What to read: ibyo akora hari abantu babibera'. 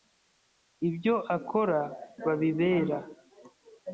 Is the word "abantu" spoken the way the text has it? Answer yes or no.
no